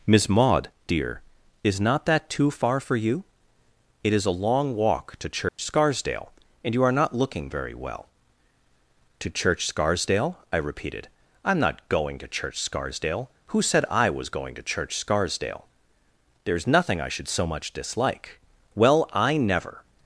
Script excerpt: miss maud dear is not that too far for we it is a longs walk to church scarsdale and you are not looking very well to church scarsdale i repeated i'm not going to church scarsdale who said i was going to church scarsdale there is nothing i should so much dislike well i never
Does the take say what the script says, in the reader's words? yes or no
no